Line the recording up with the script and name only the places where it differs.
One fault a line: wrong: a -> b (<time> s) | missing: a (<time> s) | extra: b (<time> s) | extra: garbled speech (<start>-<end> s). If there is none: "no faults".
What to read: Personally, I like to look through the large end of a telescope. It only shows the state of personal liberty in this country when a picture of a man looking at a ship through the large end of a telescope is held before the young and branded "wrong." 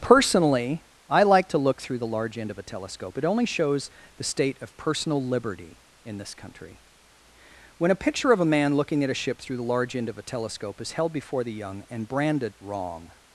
no faults